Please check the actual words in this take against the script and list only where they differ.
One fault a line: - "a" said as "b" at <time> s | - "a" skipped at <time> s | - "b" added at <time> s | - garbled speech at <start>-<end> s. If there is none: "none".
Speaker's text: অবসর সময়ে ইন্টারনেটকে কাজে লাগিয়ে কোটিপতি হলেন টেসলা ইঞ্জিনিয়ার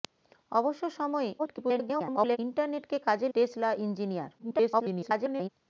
- garbled speech at 1.4-2.4 s
- "লাগিয়ে কোটিপতি হলেন" skipped at 3.3 s
- garbled speech at 4.4-5.5 s